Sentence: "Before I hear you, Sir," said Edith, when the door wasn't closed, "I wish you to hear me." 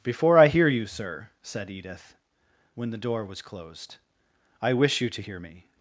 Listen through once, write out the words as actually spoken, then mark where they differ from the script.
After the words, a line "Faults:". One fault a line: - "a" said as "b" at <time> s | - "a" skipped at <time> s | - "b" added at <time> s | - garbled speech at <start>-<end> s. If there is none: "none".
"Before I hear you, Sir," said Edith, when the door was closed, "I wish you to hear me."
Faults:
- "wasn't" said as "was" at 3.2 s